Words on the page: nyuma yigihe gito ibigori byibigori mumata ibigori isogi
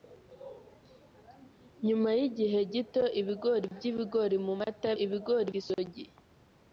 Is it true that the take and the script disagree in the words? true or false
false